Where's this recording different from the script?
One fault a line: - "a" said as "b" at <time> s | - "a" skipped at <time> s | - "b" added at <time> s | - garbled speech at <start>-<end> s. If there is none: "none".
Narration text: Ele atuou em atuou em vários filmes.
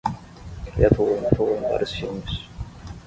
none